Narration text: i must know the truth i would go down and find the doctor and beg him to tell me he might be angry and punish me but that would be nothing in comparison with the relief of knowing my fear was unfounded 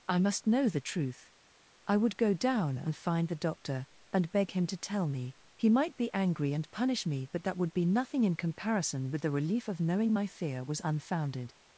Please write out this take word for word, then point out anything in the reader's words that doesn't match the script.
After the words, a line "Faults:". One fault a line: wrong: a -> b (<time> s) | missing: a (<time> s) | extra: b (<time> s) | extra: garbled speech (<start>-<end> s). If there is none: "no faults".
i must know the truth i would go down and find the doctor and beg him to tell me he might be angry and punish me but that would be nothing in comparison with the relief of knowing my fear was unfounded
Faults:
no faults